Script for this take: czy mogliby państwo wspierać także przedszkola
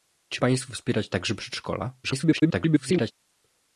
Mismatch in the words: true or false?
true